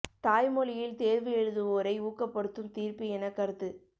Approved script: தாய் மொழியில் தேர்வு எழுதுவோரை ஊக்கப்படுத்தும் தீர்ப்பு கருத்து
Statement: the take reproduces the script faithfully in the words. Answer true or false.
false